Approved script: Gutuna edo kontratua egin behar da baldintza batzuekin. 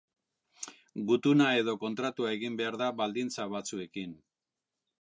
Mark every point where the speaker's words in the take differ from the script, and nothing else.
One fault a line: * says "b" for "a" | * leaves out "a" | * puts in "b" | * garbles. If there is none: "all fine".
all fine